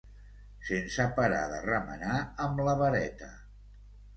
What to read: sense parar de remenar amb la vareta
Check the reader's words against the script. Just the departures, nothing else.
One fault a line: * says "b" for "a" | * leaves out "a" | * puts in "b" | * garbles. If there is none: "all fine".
all fine